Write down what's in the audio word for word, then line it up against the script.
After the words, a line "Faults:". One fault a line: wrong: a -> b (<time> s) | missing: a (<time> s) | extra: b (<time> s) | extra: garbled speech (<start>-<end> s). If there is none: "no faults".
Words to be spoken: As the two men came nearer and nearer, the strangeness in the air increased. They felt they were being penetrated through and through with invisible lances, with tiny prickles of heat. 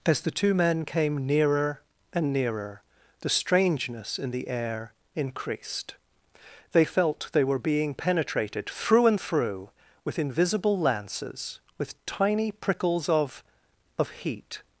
As the two men came nearer and nearer, the strangeness in the air increased. They felt they were being penetrated through and through with invisible lances, with tiny prickles of of heat.
Faults:
extra: of (14.0 s)